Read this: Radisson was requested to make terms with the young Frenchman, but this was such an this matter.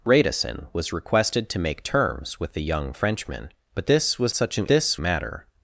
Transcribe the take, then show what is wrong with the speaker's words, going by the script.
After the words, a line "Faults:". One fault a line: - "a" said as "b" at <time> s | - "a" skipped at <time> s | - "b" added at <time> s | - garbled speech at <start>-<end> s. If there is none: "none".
Radisson was requested to make terms with the young Frenchman, but this was such an this matter.
Faults:
none